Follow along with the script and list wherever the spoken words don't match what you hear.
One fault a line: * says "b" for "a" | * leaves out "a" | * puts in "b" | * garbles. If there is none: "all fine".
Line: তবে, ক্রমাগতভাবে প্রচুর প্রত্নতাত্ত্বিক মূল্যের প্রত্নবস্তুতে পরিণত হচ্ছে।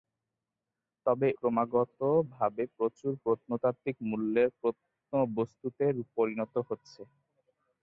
all fine